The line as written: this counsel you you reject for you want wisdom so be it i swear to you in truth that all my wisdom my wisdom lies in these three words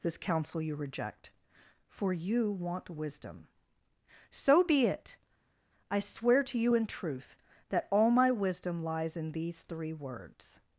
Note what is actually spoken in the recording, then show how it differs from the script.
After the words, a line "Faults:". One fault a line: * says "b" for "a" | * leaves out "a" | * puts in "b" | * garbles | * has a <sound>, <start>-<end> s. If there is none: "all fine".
this counsel you reject for you want wisdom so be it i swear to you in truth that all my wisdom lies in these three words
Faults:
* leaves out "you"
* leaves out "my wisdom"